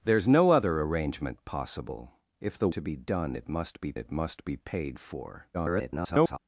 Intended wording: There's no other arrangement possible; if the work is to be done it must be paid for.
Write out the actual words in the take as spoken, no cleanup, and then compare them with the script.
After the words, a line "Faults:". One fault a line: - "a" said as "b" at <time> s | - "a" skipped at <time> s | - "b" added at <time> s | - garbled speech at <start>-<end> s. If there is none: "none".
There's no other arrangement possible; if the to be done it must be it must be paid for. [garbled]
Faults:
- "work is" skipped at 2.7 s
- "it must be" added at 3.9 s
- garbled speech at 5.5-6.4 s